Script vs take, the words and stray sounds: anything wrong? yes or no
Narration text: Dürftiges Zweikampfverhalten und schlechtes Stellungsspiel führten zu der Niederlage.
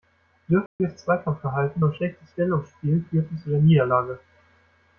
yes